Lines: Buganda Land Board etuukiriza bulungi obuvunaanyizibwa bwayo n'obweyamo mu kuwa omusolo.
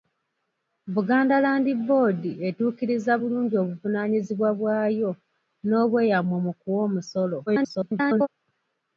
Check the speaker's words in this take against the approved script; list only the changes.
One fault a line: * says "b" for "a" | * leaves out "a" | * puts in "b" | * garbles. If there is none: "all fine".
* garbles